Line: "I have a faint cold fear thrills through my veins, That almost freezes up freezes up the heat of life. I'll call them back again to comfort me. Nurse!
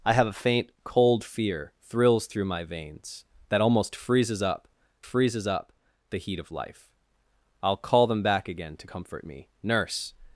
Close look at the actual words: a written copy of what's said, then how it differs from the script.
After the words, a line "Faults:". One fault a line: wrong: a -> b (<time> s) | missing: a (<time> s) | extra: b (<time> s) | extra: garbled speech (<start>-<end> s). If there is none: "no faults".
"I have a faint cold fear thrills through my veins, That almost freezes up freezes up the heat of life. I'll call them back again to comfort me. Nurse!
Faults:
no faults